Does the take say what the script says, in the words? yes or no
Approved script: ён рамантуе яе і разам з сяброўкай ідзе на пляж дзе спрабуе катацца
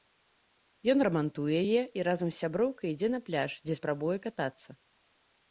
yes